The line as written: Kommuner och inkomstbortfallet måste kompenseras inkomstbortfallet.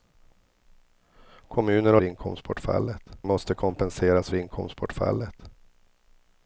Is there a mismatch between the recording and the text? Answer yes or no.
no